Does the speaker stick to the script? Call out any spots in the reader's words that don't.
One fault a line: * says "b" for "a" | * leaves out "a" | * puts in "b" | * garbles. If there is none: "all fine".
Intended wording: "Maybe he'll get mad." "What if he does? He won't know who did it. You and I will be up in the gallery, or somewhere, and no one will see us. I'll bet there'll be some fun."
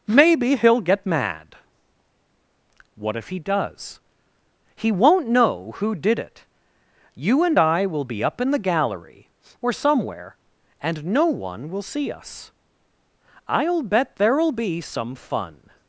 all fine